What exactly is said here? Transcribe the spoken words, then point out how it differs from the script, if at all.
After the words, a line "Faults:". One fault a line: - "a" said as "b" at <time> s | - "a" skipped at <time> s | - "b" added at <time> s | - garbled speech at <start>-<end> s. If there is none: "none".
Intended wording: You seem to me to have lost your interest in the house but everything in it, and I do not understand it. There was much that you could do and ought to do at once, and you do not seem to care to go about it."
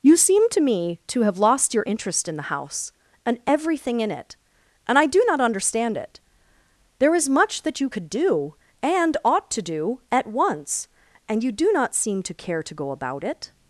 You seem to me to have lost your interest in the house and everything in it, and I do not understand it. There is much that you could do and ought to do at once, and you do not seem to care to go about it."
Faults:
- "but" said as "and" at 3.3 s
- "was" said as "is" at 7.1 s